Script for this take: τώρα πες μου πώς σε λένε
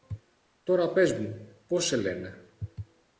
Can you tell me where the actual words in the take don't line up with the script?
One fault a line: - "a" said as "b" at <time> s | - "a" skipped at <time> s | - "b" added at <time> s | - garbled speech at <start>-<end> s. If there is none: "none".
none